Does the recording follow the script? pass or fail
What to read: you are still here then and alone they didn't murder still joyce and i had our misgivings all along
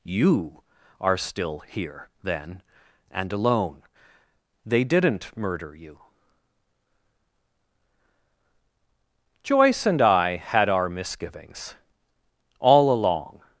fail